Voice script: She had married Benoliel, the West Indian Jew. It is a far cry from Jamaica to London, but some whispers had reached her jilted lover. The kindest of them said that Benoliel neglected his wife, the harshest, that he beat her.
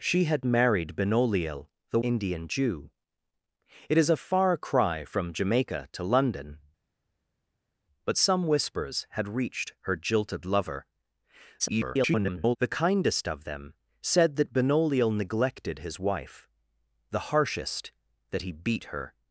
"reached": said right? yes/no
yes